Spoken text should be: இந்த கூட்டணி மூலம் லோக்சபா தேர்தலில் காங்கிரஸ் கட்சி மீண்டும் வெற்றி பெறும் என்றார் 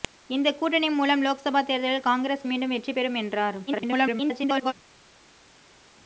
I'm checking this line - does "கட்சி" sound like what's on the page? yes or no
no